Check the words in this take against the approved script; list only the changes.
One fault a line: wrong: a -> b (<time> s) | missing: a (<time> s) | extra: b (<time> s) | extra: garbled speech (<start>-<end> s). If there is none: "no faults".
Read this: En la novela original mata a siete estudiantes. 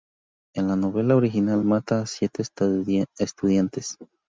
no faults